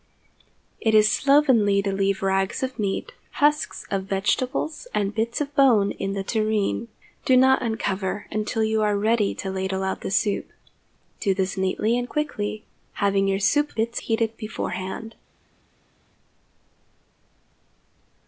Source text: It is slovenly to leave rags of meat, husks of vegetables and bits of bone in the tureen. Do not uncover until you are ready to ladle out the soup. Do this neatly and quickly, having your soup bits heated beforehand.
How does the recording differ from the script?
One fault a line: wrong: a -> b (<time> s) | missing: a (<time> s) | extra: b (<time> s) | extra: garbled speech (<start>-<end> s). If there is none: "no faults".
no faults